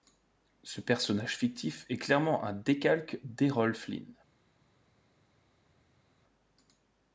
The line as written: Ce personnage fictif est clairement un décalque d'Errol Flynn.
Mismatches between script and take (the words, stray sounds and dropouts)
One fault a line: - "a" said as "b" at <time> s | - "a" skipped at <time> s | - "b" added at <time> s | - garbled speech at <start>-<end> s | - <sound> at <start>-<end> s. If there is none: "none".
none